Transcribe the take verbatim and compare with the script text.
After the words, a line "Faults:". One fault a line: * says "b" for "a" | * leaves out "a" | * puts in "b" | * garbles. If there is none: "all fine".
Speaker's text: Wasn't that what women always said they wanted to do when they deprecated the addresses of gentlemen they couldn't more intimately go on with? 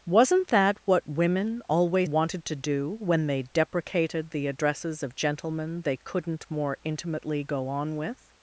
Wasn't that what women always wanted to do when they deprecated the addresses of gentlemen they couldn't more intimately go on with?
Faults:
* leaves out "said they"